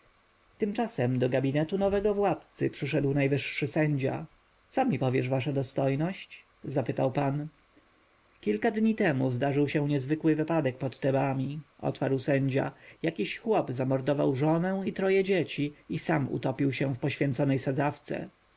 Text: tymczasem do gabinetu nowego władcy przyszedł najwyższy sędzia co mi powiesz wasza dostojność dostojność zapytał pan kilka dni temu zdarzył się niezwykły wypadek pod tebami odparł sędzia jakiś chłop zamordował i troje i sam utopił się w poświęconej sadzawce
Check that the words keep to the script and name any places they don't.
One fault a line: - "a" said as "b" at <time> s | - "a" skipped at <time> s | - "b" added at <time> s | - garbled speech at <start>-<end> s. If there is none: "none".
- "dostojność" skipped at 6.4 s
- "żonę" added at 14.4 s
- "dzieci" added at 15.2 s